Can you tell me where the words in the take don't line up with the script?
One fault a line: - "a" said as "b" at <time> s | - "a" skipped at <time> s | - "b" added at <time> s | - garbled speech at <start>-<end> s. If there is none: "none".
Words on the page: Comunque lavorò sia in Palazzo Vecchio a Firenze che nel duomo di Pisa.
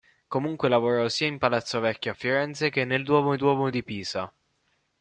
- "duomo" added at 3.4 s